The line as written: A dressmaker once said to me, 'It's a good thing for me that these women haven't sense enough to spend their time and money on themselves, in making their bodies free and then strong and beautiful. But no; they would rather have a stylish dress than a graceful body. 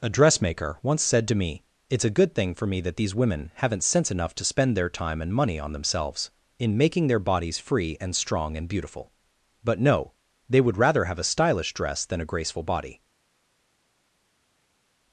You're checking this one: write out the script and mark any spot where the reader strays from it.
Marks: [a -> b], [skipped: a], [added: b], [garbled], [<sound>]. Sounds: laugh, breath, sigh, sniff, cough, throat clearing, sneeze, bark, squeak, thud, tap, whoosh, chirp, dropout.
A dressmaker once said to me, 'It's a good thing for me that these women haven't sense enough to spend their time and money on themselves, in making their bodies free and [skipped: then] strong and beautiful. But no; they would rather have a stylish dress than a graceful body.